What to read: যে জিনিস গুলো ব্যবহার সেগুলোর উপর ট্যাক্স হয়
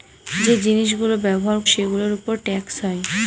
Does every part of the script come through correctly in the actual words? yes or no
yes